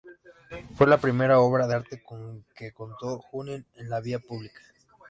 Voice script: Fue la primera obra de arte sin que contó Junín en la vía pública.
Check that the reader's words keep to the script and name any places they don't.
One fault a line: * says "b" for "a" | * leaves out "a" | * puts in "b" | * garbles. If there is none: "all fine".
* says "con" for "sin"